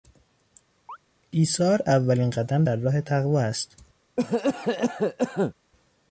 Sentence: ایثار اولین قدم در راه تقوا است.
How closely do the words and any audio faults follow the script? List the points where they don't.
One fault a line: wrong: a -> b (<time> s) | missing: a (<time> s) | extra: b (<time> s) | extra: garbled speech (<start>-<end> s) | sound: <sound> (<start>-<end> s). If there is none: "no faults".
sound: chirp (0.9-1.0 s)
sound: cough (4.2-5.5 s)